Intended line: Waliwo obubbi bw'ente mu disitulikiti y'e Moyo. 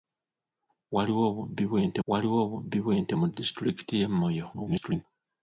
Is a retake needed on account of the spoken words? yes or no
yes